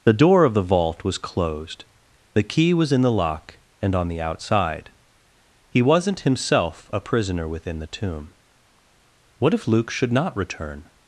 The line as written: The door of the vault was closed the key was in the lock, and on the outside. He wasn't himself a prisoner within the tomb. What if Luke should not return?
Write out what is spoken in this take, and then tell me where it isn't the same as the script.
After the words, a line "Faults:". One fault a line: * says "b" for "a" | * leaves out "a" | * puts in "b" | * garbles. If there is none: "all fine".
The door of the vault was closed the key was in the lock, and on the outside. He wasn't himself a prisoner within the tomb. What if Luke should not return?
Faults:
all fine